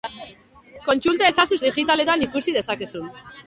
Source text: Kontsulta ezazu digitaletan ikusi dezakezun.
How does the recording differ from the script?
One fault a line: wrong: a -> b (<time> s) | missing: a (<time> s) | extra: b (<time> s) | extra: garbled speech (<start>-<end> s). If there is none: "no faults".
no faults